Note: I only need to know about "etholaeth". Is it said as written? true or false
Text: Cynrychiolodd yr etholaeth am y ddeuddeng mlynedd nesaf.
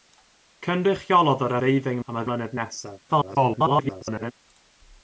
false